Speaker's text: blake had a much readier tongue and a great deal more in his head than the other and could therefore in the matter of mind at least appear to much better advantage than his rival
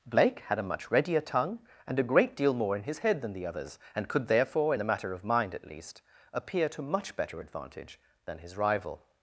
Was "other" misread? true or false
true